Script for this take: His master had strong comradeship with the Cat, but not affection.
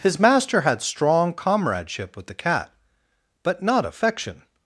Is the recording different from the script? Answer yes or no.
no